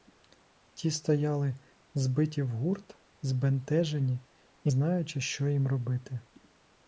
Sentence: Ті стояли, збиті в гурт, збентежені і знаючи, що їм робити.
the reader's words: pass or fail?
pass